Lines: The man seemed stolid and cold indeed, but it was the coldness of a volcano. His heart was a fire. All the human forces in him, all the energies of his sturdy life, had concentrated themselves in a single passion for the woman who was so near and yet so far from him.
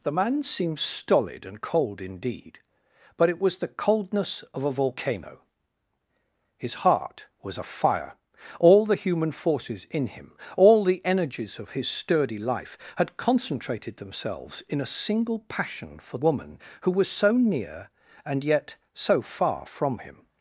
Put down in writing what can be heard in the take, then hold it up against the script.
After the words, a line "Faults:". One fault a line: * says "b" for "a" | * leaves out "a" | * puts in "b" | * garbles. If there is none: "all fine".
The man seemed stolid and cold indeed, but it was the coldness of a volcano. His heart was a fire. All the human forces in him, all the energies of his sturdy life, had concentrated themselves in a single passion for woman who was so near and yet so far from him.
Faults:
* leaves out "the"